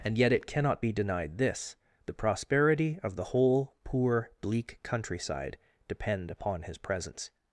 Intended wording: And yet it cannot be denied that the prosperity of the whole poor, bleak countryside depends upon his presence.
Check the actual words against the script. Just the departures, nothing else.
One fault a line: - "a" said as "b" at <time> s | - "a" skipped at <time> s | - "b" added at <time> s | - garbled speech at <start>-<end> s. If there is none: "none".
- "that" said as "this" at 1.4 s
- "depends" said as "depend" at 5.9 s